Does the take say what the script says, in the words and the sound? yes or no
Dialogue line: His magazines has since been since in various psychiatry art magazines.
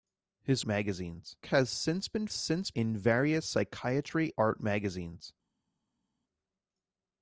yes